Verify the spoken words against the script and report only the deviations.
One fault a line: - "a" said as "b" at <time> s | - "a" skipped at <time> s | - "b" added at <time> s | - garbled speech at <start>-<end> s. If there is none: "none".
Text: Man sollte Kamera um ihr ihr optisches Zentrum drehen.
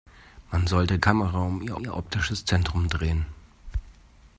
none